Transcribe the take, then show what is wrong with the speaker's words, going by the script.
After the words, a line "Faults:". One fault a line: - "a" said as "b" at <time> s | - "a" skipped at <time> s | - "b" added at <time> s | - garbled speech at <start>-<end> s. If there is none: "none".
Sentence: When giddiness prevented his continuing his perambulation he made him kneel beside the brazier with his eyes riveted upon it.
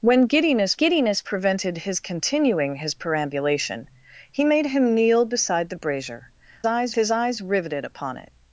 When giddiness giddiness prevented his continuing his perambulation he made him kneel beside the brazier eyes his eyes riveted upon it.
Faults:
- "giddiness" added at 0.7 s
- "with" said as "eyes" at 6.6 s